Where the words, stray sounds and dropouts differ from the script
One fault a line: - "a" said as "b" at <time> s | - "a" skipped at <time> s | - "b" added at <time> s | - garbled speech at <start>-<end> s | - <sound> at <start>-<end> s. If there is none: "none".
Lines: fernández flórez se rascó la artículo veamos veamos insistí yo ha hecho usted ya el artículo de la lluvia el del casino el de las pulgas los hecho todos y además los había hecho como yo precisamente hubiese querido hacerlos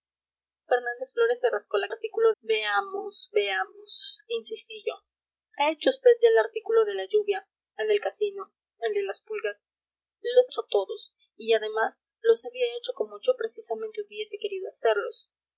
none